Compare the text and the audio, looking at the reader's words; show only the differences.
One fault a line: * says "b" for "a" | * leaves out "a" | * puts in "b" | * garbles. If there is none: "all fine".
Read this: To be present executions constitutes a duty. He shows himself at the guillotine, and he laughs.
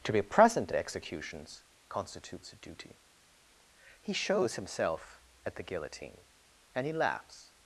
all fine